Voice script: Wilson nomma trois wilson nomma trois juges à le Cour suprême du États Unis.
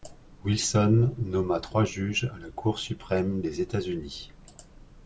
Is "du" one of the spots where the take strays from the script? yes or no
yes